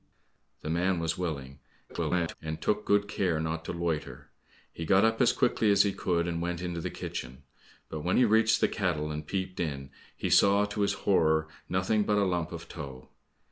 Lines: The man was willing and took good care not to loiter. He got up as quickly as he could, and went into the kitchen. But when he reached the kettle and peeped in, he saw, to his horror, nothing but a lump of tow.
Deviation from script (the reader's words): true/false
true